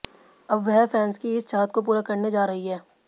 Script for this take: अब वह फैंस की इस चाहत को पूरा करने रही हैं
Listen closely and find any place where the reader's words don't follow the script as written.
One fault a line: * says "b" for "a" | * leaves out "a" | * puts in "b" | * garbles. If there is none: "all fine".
* puts in "जा"